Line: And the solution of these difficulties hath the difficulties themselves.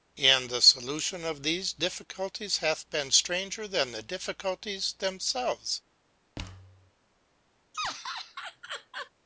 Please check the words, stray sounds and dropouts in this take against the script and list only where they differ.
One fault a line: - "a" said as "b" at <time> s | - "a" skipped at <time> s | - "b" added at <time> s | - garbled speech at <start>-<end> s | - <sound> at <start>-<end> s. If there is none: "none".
- "been stranger than" added at 2.9 s
- thud at 6.4-6.9 s
- laugh at 7.7-9.1 s